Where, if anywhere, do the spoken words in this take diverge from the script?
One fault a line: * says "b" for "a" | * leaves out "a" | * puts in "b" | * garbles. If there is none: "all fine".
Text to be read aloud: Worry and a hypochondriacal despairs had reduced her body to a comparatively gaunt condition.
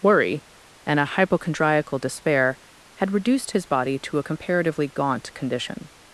* says "despair" for "despairs"
* says "his" for "her"